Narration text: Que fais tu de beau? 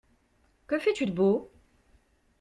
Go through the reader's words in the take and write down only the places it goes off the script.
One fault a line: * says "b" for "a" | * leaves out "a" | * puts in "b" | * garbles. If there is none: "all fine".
all fine